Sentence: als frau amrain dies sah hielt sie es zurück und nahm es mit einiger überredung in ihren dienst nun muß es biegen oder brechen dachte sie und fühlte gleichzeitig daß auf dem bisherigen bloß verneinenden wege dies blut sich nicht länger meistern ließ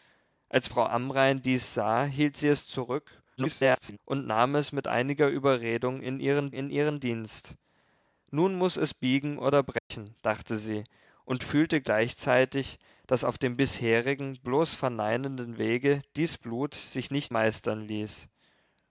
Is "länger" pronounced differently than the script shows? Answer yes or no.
yes